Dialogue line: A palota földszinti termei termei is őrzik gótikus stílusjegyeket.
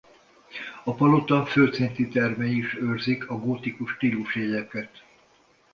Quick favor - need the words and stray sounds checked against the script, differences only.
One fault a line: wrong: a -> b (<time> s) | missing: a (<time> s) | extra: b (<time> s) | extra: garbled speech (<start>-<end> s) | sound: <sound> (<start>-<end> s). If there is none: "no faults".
missing: termei (2.6 s)
extra: a (3.3 s)